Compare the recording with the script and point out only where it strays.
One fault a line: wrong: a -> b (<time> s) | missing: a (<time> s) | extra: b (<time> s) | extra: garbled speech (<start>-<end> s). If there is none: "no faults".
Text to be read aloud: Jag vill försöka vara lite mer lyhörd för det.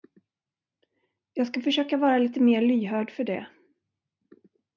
wrong: vill -> ska (1.5 s)